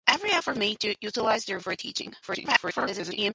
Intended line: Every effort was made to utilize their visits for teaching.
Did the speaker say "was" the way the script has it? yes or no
no